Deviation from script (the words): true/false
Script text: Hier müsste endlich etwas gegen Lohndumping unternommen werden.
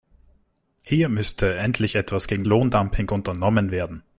false